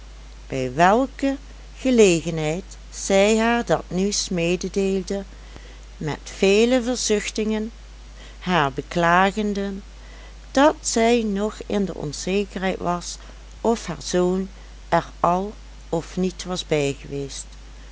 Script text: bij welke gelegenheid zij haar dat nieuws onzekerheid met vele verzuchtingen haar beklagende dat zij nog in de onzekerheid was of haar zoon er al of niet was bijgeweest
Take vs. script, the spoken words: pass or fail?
fail